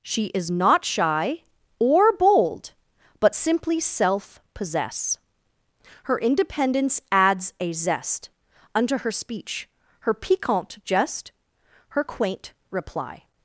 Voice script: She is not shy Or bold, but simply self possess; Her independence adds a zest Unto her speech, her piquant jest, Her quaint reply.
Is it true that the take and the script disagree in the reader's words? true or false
false